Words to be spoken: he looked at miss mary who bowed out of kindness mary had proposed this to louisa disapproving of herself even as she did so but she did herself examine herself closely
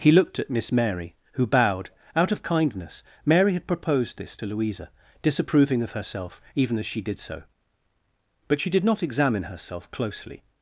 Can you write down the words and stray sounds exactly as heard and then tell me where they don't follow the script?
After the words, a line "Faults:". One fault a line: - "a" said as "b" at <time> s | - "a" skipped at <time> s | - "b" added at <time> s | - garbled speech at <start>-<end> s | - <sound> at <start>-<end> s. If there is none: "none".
he looked at miss mary who bowed out of kindness mary had proposed this to louisa disapproving of herself even as she did so but she did not examine herself closely
Faults:
- "herself" said as "not" at 8.8 s